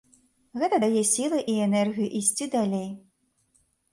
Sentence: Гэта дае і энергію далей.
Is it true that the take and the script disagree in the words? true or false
true